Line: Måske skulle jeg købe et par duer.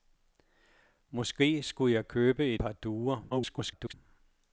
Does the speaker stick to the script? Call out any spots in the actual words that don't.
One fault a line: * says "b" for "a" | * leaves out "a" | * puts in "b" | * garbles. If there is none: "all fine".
* leaves out "et"
* garbles